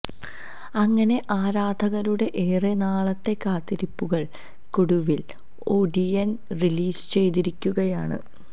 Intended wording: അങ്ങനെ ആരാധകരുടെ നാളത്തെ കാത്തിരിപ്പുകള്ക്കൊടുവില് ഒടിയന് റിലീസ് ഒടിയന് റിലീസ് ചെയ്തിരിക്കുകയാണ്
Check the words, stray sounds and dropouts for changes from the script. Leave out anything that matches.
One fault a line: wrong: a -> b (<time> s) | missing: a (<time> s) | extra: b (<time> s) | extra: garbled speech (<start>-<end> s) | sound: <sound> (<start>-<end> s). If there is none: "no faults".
extra: ഏറെ (2.4 s)
missing: ഒടിയന് റിലീസ് (7.0 s)